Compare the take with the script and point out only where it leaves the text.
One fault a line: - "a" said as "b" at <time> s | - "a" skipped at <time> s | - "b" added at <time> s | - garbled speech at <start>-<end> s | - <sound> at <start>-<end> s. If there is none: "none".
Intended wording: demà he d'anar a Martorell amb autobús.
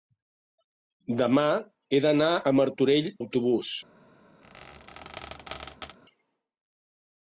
- "amb" skipped at 3.1 s
- squeak at 4.4-6.0 s